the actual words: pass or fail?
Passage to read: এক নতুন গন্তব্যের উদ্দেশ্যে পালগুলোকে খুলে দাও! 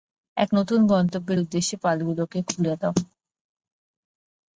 pass